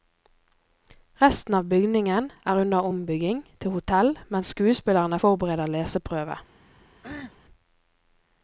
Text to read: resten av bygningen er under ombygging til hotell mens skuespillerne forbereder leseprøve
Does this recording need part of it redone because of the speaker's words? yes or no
no